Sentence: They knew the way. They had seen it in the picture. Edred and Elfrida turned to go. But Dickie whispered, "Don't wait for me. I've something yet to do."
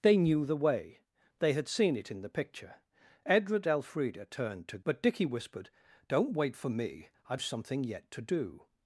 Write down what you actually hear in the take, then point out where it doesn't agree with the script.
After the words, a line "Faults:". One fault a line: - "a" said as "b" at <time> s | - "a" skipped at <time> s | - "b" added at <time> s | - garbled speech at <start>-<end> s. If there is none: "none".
They knew the way. They had seen it in the picture. Edred Elfrida turned to. But Dickie whispered, "Don't wait for me. I've something yet to do."
Faults:
- "and" skipped at 3.7 s
- "go" skipped at 4.8 s